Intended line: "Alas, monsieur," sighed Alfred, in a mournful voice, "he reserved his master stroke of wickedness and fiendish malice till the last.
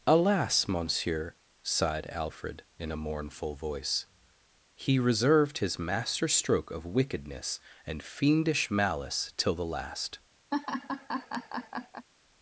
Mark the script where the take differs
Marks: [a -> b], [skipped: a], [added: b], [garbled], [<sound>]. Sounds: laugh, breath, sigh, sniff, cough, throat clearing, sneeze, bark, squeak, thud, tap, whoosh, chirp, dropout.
"Alas, monsieur," sighed Alfred, in a mournful voice, "he reserved his master stroke of wickedness and fiendish malice till the last. [laugh]